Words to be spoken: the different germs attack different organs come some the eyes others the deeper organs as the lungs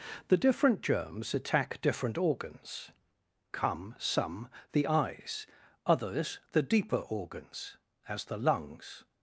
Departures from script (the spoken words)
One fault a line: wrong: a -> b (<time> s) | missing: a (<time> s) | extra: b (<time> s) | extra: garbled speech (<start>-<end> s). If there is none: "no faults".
no faults